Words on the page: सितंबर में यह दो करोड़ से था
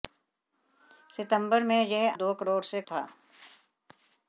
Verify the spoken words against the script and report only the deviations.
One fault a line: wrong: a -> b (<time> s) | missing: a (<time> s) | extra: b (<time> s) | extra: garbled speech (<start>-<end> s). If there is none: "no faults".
no faults